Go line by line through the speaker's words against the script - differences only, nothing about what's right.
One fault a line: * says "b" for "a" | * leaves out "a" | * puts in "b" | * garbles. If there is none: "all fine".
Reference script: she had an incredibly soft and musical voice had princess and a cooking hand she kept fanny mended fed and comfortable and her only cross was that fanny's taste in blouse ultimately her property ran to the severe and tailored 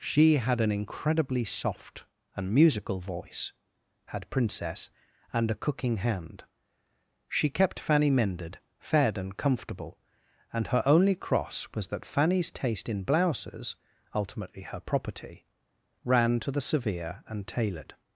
* says "blouses" for "blouse"